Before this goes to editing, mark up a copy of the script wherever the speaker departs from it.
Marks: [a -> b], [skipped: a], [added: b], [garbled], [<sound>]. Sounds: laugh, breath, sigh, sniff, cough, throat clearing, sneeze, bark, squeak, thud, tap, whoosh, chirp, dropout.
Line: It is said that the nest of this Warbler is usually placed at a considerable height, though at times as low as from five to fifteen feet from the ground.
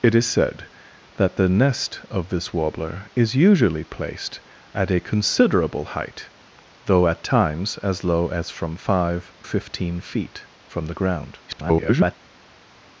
It is said that the nest of this Warbler is usually placed at a considerable height, though at times as low as from five [skipped: to] fifteen feet from the ground. [garbled]